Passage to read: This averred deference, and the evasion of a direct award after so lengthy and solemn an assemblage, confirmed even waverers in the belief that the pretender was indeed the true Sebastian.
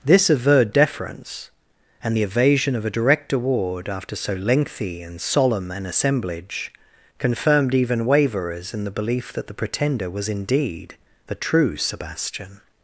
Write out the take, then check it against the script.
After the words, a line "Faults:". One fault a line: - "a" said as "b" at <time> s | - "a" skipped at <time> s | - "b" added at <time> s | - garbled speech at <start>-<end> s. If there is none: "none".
This averred deference, and the evasion of a direct award after so lengthy and solemn an assemblage, confirmed even waverers in the belief that the pretender was indeed the true Sebastian.
Faults:
none